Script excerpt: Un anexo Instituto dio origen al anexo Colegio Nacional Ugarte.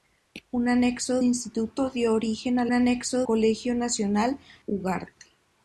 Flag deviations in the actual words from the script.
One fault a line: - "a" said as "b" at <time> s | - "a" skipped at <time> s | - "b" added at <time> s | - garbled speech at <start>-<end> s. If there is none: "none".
none